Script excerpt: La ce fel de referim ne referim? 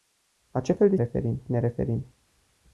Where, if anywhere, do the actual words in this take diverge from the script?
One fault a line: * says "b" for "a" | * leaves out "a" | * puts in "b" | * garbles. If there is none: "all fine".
all fine